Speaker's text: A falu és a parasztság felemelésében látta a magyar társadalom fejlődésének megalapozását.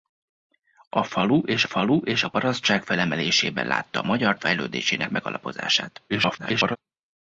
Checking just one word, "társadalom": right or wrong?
wrong